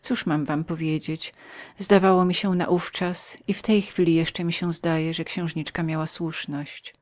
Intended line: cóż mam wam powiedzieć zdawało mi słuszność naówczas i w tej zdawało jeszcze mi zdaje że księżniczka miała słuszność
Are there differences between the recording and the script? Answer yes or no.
yes